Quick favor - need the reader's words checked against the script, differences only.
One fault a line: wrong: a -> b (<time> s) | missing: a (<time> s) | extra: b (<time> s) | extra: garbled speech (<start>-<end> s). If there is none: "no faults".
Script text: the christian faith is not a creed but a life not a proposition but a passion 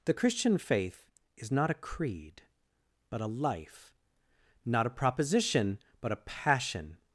no faults